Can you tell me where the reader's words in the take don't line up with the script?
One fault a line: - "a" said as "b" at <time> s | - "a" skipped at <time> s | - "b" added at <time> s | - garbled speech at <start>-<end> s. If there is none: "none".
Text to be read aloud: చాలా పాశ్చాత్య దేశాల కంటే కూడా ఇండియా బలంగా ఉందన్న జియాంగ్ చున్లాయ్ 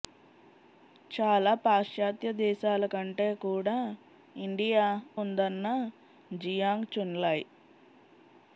- "బలంగా" skipped at 4.9 s